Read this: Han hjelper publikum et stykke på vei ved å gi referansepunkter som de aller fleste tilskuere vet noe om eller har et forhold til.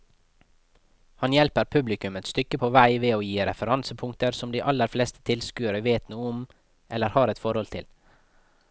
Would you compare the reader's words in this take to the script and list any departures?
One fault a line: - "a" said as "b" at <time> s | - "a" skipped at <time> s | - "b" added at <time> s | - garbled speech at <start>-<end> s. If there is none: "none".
none